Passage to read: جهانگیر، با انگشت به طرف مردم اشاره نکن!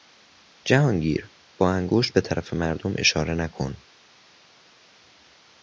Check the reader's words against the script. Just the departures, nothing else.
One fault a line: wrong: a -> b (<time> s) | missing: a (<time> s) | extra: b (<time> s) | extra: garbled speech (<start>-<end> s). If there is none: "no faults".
no faults